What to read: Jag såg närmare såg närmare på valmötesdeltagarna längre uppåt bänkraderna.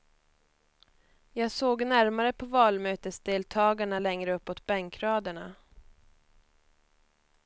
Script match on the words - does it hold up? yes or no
no